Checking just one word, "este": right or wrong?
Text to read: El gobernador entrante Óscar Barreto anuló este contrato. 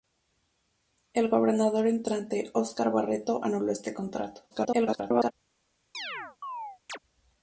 right